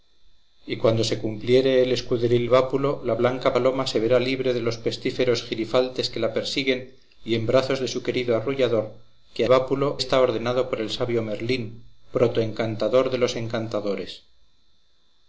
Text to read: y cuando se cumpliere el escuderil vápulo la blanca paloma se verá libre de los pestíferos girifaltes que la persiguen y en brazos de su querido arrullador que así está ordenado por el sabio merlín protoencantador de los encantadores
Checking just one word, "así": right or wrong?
wrong